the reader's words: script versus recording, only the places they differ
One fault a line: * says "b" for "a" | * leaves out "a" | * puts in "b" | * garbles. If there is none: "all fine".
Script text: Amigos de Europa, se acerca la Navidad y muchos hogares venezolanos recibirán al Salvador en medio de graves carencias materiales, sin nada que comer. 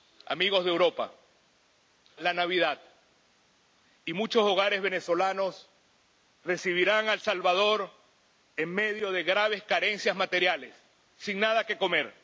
* leaves out "se acerca"